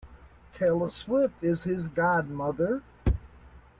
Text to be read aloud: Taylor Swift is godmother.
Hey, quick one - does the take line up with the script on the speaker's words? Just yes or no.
no